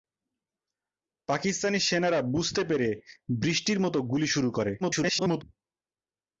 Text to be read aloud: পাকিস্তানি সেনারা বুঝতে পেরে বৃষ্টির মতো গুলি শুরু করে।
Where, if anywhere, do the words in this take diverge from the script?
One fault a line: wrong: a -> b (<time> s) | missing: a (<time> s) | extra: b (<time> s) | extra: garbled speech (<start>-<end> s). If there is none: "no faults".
extra: garbled speech (4.8-5.4 s)